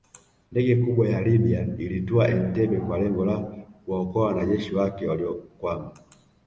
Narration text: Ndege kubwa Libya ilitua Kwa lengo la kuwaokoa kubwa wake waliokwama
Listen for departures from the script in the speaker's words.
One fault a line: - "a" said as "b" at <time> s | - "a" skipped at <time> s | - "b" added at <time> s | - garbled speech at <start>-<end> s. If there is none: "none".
- "ya" added at 1.1 s
- "Entebbe" added at 2.3 s
- "kubwa" said as "wanajeshi" at 4.3 s